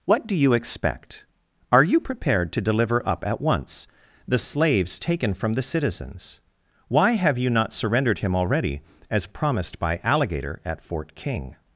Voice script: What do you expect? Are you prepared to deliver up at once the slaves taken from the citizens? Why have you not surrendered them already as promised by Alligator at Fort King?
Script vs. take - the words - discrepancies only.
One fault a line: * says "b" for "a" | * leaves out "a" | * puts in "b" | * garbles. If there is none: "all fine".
* says "him" for "them"